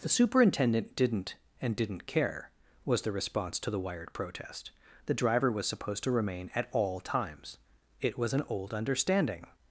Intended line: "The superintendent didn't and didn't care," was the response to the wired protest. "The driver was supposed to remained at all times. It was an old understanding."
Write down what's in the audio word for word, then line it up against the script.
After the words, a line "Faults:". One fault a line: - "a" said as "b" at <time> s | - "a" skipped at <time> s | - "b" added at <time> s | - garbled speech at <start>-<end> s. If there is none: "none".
"The superintendent didn't and didn't care," was the response to the wired protest. "The driver was supposed to remain at all times. It was an old understanding."
Faults:
- "remained" said as "remain" at 6.1 s